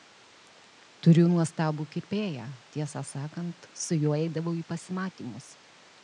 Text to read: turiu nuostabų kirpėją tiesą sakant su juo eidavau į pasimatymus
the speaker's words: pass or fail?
pass